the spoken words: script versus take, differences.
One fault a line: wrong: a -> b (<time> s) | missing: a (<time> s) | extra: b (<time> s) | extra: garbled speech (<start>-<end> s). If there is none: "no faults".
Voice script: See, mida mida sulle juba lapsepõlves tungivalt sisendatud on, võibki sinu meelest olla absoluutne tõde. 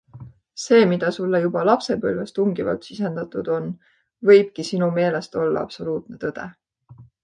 missing: mida (1.1 s)